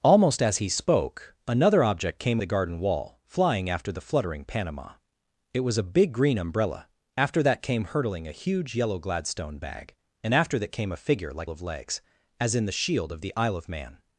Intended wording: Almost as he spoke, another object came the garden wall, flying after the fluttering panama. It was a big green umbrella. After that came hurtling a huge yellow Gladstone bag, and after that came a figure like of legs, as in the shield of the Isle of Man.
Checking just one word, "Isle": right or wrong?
right